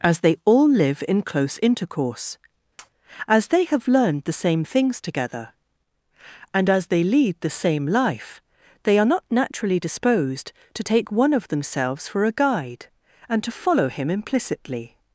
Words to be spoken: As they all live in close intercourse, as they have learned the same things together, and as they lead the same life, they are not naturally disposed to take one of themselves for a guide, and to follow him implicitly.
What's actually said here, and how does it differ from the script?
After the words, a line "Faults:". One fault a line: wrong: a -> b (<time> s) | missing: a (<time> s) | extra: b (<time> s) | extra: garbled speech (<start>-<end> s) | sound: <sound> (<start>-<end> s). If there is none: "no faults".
As they all live in close intercourse, as they have learned the same things together, and as they lead the same life, they are not naturally disposed to take one of themselves for a guide, and to follow him implicitly.
Faults:
sound: tap (2.8-2.9 s)